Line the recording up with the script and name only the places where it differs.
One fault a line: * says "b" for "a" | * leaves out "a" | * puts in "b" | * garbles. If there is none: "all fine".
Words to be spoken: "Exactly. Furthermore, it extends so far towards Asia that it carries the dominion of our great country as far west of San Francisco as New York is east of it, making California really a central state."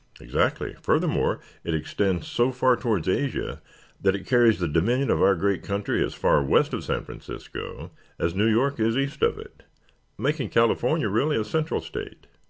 all fine